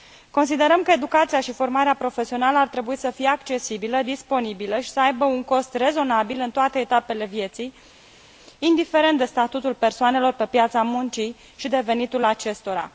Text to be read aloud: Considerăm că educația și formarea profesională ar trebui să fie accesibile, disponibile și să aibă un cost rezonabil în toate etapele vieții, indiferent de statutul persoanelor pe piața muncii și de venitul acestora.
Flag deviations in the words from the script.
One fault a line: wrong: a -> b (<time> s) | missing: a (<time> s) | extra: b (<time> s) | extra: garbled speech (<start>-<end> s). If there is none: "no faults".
no faults